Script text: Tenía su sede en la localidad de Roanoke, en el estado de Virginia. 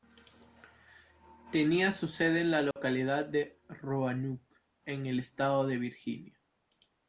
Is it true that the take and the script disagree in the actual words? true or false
false